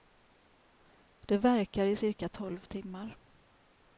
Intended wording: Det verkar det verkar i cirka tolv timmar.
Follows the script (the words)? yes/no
no